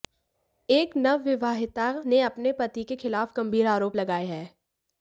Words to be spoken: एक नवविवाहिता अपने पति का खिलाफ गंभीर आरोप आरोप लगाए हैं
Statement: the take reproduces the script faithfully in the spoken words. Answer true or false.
false